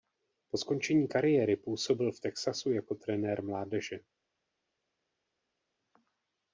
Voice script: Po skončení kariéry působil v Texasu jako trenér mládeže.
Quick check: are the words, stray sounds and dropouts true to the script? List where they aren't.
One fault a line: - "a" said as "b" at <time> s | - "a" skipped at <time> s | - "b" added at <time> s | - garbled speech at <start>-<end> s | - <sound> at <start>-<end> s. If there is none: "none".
none